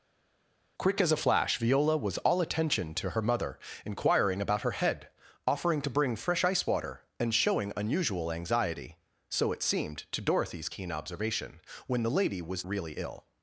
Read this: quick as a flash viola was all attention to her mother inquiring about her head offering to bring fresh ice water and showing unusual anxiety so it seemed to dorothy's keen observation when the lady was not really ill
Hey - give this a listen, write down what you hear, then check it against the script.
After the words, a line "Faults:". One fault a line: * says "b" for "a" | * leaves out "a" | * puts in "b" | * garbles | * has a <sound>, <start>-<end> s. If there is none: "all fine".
quick as a flash viola was all attention to her mother inquiring about her head offering to bring fresh ice water and showing unusual anxiety so it seemed to dorothy's keen observation when the lady was really ill
Faults:
* leaves out "not"